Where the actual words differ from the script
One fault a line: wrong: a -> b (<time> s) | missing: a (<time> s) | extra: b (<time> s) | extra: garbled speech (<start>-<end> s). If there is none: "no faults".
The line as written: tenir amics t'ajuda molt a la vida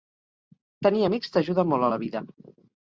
no faults